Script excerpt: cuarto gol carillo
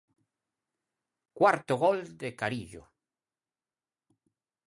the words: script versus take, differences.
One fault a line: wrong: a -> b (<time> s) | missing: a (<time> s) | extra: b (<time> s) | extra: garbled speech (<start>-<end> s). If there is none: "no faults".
extra: de (2.2 s)